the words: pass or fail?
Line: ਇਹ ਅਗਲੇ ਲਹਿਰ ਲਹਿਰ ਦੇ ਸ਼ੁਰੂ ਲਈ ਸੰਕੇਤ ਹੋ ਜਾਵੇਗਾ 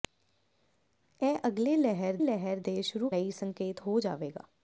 pass